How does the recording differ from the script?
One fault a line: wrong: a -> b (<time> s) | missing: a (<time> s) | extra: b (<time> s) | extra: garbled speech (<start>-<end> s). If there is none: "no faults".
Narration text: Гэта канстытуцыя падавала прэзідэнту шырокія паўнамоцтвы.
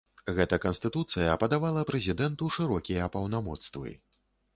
no faults